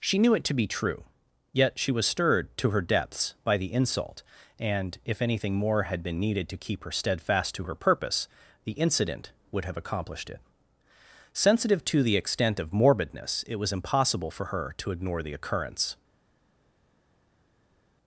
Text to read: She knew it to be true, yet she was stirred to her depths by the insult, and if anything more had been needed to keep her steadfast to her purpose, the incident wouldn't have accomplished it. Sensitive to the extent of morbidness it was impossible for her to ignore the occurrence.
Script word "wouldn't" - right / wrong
wrong